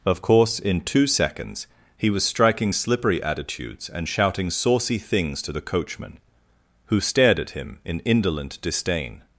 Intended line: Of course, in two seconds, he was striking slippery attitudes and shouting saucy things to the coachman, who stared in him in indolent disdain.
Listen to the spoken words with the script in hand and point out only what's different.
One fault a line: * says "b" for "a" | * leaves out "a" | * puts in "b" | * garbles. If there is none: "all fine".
* says "at" for "in"